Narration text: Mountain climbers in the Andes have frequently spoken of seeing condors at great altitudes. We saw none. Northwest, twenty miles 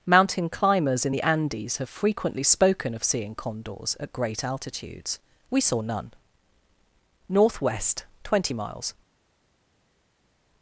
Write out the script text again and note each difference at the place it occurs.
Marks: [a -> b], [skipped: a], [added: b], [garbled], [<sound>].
Mountain climbers in the Andes have frequently spoken of seeing condors at great altitudes. We saw none. Northwest, twenty miles